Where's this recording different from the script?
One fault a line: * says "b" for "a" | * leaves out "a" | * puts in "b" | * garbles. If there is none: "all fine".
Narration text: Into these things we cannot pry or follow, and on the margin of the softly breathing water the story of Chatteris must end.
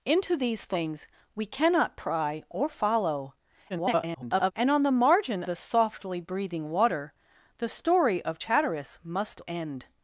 * garbles
* leaves out "of"